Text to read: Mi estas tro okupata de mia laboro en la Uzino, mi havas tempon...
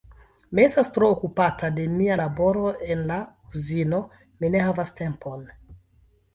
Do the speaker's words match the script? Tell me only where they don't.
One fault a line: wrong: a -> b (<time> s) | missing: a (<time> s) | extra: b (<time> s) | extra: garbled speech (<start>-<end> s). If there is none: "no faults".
extra: ne (4.6 s)